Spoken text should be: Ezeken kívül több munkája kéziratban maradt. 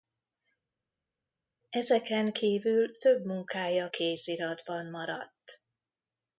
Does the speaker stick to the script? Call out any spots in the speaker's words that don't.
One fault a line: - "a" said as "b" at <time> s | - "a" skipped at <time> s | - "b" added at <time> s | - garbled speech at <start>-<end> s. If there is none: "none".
none